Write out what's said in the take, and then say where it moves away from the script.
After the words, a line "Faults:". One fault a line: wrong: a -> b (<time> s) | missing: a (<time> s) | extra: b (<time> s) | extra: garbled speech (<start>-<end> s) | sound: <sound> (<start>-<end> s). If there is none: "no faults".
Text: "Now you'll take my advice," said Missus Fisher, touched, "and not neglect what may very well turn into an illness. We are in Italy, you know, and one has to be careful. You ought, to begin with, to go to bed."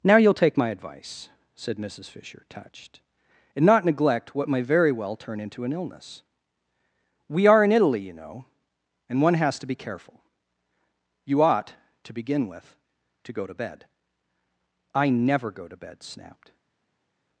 "Now you'll take my advice," said Missus Fisher, touched, "and not neglect what may very well turn into an illness. We are in Italy, you know, and one has to be careful. You ought, to begin with, to go to bed." "I never go to bed," snapped
Faults:
extra: I never go to bed snapped (14.9 s)